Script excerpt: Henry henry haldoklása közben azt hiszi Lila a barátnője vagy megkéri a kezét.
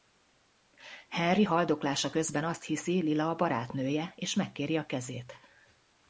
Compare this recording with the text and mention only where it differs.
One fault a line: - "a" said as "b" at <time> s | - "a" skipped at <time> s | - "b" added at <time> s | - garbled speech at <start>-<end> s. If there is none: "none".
- "henry" skipped at 1.4 s
- "vagy" said as "és" at 4.1 s